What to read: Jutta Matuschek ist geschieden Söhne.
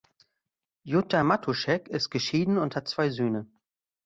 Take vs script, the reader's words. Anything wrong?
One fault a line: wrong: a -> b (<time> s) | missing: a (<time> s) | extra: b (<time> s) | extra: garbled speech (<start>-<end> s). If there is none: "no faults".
extra: und hat zwei (2.6 s)